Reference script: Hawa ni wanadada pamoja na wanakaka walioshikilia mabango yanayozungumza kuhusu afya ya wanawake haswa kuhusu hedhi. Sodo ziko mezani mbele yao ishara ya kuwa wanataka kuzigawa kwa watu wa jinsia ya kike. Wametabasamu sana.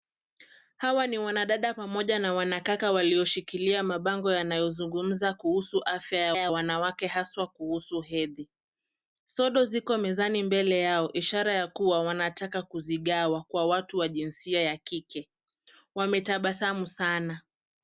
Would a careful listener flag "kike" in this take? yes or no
no